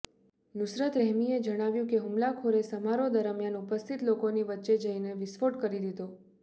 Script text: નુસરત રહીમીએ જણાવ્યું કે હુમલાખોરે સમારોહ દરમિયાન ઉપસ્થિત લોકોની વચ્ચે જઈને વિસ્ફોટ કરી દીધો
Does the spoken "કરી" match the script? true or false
true